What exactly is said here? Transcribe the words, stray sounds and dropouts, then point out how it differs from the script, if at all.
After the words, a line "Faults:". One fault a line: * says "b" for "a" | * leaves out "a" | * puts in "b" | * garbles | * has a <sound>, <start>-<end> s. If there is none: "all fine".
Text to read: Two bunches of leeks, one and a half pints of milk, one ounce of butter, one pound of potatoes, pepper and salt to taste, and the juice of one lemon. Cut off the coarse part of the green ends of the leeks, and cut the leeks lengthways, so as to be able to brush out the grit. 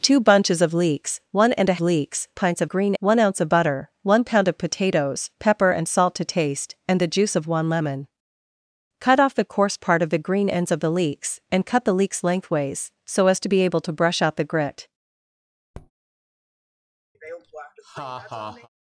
Two bunches of leeks, one and a leeks pints of green, one ounce of butter, one pound of potatoes, pepper and salt to taste, and the juice of one lemon. Cut off the coarse part of the green ends of the leeks, and cut the leeks lengthways, so as to be able to brush out the grit.
Faults:
* says "leeks" for "half"
* says "green" for "milk"
* has a tap, 15.7-15.9 s
* has a laugh, 17.1-18.7 s